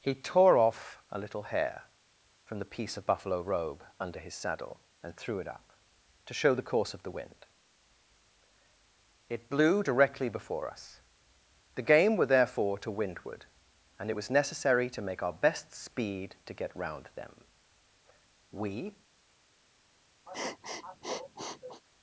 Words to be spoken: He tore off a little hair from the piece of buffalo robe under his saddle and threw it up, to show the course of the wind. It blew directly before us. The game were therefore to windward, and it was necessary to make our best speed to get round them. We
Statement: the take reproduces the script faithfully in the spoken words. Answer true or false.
true